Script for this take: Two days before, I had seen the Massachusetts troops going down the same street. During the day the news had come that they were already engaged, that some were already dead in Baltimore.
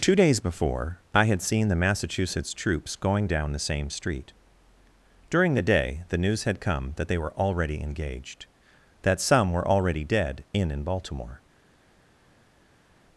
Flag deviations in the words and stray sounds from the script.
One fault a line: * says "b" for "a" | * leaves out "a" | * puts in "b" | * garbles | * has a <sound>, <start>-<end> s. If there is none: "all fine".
* puts in "in"